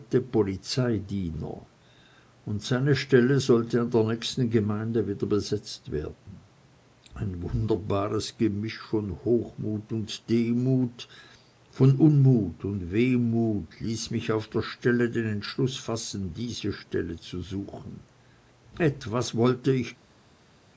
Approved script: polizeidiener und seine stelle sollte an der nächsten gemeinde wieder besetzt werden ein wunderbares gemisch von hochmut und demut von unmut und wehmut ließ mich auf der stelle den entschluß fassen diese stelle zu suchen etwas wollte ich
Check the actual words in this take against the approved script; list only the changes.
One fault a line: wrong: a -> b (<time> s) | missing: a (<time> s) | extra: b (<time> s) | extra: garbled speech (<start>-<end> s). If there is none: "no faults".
no faults